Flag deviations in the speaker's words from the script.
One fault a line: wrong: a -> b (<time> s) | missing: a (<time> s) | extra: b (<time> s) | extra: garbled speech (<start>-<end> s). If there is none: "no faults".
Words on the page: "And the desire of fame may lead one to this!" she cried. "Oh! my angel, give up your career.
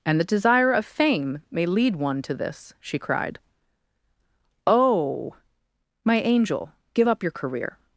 no faults